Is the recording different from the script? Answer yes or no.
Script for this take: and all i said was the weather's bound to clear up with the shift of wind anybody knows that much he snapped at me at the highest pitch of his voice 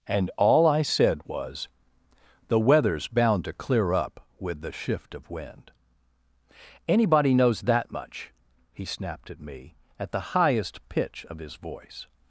no